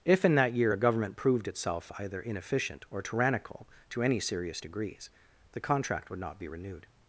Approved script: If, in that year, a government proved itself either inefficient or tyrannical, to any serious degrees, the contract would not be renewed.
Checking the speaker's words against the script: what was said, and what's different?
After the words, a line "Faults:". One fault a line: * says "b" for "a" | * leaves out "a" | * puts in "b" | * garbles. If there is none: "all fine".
If, in that year, a government proved itself either inefficient or tyrannical, to any serious degrees, the contract would not be renewed.
Faults:
all fine